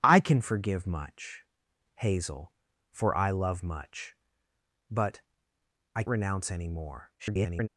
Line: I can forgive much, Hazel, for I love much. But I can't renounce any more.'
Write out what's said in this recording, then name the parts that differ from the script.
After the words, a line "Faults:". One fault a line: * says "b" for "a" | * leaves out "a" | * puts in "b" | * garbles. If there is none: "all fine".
I can forgive much, Hazel, for I love much. But I renounce any more.' [garbled]
Faults:
* leaves out "can't"
* garbles